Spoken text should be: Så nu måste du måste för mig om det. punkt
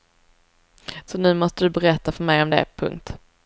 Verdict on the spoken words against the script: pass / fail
fail